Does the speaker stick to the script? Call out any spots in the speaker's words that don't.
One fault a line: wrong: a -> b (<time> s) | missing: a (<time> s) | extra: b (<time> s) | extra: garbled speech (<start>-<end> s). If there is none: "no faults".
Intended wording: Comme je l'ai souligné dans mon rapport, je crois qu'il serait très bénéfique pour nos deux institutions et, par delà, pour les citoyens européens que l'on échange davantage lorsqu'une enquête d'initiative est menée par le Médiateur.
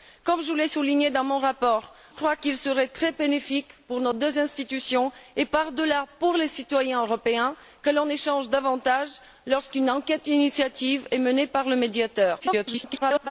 missing: je (1.9 s)
extra: garbled speech (12.4-13.3 s)